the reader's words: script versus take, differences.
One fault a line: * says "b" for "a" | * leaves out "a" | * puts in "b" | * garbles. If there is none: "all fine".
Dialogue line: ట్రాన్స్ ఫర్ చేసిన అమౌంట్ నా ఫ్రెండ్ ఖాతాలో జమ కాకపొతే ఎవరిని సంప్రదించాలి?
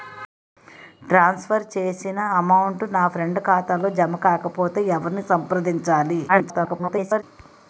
* garbles